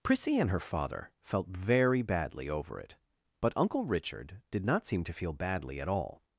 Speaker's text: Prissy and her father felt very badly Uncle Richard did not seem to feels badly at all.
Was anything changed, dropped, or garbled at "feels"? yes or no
yes